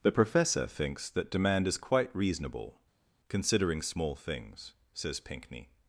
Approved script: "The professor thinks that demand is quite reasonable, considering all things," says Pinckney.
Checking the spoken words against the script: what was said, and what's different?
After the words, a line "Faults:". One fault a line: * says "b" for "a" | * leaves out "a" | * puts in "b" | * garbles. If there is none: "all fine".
"The professor thinks that demand is quite reasonable, considering small things," says Pinckney.
Faults:
* says "small" for "all"